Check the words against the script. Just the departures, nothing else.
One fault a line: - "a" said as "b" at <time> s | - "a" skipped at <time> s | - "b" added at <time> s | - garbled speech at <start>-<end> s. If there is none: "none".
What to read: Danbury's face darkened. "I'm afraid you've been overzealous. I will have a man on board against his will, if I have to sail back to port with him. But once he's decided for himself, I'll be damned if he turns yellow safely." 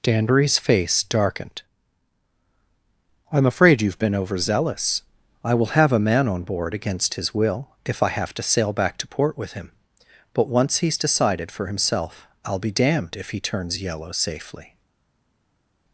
none